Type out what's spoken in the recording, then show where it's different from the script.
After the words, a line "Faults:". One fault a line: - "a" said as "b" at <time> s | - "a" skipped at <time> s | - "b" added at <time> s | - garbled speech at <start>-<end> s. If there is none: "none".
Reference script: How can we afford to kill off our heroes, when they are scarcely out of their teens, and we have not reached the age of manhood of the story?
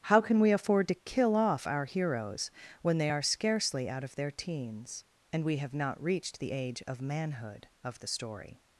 How can we afford to kill off our heroes, when they are scarcely out of their teens, and we have not reached the age of manhood of the story?
Faults:
none